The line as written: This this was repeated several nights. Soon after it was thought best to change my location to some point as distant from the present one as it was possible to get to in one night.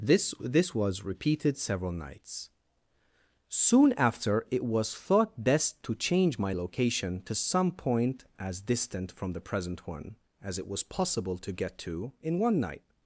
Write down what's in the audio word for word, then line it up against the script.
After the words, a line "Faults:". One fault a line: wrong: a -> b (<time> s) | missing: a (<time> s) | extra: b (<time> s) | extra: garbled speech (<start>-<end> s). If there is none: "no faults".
This this was repeated several nights. Soon after it was thought best to change my location to some point as distant from the present one as it was possible to get to in one night.
Faults:
no faults